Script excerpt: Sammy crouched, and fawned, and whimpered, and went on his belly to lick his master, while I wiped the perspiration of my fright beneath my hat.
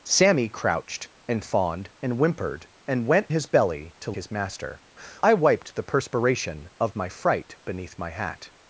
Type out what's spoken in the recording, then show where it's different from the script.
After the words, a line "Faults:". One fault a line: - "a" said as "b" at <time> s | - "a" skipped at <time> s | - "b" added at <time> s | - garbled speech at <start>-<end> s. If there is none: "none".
Sammy crouched, and fawned, and whimpered, and went his belly to his master, I wiped the perspiration of my fright beneath my hat.
Faults:
- "on" skipped at 3.3 s
- "lick" skipped at 4.1 s
- "while" skipped at 4.8 s